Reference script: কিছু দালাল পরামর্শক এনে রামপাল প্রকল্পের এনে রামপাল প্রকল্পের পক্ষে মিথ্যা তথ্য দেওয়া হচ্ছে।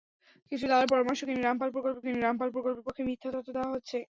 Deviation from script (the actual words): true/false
false